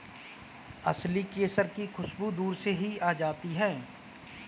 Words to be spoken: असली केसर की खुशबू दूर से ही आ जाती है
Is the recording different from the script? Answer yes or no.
no